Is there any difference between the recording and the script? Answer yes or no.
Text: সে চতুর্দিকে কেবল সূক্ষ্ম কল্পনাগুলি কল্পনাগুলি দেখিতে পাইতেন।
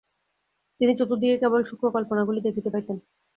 yes